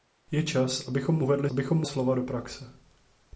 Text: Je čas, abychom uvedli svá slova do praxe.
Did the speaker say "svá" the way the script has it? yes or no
no